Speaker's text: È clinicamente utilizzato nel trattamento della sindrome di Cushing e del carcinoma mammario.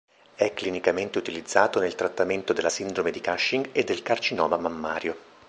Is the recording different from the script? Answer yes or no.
no